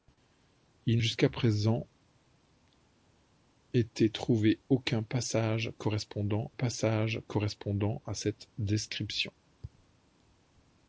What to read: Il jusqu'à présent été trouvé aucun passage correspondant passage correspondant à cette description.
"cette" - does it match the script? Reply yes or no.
yes